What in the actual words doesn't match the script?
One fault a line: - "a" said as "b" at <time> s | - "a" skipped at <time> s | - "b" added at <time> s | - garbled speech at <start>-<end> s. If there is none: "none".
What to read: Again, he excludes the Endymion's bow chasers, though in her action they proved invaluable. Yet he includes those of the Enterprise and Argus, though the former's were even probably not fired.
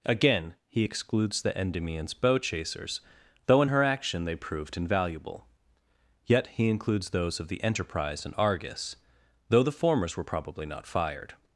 - "even" skipped at 10.2 s